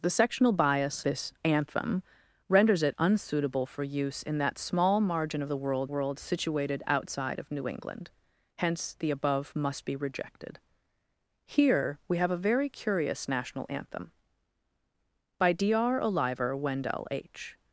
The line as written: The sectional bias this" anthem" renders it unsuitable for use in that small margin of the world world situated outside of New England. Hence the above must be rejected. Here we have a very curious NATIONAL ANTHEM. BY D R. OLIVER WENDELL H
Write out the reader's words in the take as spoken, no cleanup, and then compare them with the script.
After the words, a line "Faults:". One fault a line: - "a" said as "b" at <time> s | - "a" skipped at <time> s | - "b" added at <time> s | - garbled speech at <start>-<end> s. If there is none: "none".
The sectional bias this" anthem" renders it unsuitable for use in that small margin of the world world situated outside of New England. Hence the above must be rejected. Here we have a very curious NATIONAL ANTHEM. BY D R. OLIVER WENDELL H
Faults:
none